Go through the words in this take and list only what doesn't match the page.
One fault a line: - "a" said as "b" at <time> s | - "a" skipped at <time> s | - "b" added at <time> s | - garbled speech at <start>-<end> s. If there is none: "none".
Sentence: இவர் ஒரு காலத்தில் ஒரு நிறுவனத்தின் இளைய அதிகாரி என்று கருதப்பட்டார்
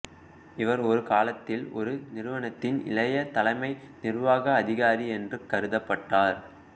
- "தலைமை நிர்வாக" added at 3.3 s